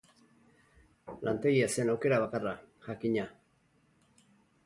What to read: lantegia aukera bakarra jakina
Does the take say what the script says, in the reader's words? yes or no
no